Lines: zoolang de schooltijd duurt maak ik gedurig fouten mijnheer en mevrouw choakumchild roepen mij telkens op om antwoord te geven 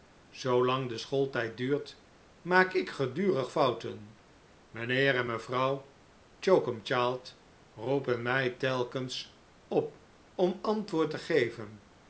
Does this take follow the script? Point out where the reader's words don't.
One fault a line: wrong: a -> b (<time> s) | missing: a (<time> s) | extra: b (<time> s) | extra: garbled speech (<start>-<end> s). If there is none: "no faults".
no faults